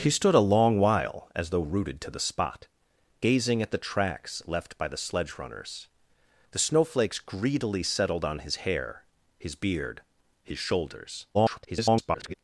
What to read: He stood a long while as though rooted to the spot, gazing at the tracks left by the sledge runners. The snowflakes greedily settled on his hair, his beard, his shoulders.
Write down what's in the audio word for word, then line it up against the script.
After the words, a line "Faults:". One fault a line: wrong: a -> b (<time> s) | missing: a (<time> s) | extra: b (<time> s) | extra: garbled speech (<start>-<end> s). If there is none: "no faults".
He stood a long while as though rooted to the spot, gazing at the tracks left by the sledge runners. The snowflakes greedily settled on his hair, his beard, his shoulders. [garbled]
Faults:
extra: garbled speech (11.3-12.3 s)